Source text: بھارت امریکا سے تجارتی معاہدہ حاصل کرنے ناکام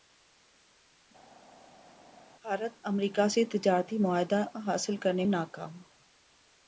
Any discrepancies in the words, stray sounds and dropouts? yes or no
no